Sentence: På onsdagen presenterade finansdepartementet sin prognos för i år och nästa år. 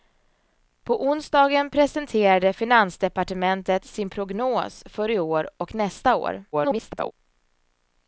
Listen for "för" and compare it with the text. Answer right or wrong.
right